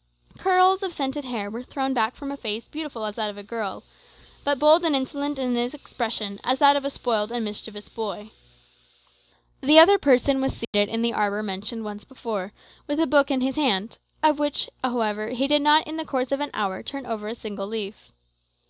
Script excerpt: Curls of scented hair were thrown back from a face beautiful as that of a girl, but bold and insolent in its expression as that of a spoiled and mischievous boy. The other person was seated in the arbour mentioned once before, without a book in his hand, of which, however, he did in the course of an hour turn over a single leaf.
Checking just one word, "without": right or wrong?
wrong